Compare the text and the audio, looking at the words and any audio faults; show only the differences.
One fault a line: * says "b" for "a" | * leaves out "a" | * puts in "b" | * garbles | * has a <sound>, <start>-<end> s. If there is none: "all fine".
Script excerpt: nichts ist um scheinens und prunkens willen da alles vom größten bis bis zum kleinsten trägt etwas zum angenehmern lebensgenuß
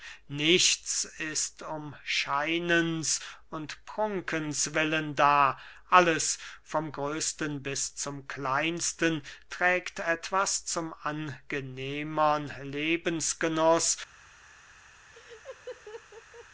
* leaves out "bis"
* has a laugh, 15.1-16.5 s